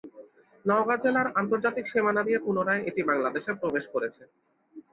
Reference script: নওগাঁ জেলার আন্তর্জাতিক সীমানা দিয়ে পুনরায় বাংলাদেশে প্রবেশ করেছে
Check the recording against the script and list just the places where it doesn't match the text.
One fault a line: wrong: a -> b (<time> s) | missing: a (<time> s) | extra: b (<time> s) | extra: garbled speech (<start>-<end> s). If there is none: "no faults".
extra: এটি (2.9 s)